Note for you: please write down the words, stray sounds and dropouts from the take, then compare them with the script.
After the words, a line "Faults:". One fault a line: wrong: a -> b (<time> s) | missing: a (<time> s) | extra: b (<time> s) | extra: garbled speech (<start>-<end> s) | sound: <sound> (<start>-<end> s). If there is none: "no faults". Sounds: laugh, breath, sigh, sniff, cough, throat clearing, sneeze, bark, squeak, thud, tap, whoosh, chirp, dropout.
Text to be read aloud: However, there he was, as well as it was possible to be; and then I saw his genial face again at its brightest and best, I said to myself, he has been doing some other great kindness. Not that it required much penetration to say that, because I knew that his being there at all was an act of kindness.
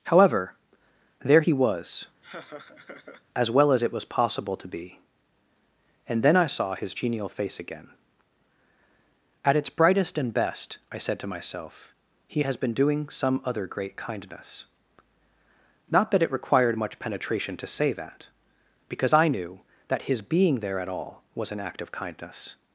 However, there he was, as well as it was possible to be; and then I saw his genial face again at its brightest and best, I said to myself, he has been doing some other great kindness. Not that it required much penetration to say that, because I knew that his being there at all was an act of kindness.
Faults:
sound: laugh (2.2-3.2 s)